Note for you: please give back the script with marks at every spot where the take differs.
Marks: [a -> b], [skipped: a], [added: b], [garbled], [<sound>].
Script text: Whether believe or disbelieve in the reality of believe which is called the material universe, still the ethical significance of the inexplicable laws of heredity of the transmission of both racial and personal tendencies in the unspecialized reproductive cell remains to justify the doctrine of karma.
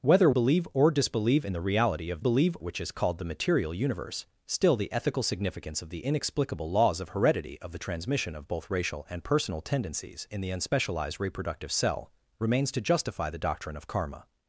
Whether believe or disbelieve in the reality of believe which is called the material universe, still the ethical significance of the inexplicable laws of heredity of the transmission of both racial and personal tendencies in the unspecialized reproductive cell remains to justify the doctrine of karma.